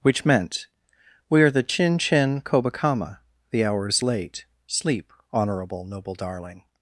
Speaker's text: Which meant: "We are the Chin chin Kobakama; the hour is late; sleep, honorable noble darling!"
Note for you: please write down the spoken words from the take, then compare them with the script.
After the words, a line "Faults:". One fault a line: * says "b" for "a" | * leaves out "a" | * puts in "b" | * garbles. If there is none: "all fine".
Which meant: "We are the Chin chin Kobakama; the hour is late; sleep, honorable noble darling!"
Faults:
all fine